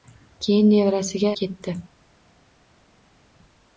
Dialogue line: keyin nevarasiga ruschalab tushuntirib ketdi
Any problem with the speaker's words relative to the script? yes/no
yes